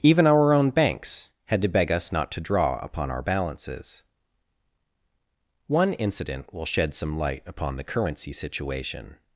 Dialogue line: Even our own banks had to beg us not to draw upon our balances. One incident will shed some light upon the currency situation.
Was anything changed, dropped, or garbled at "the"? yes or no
no